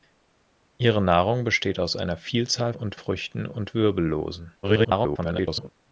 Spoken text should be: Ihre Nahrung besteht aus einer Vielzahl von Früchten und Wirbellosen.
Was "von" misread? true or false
true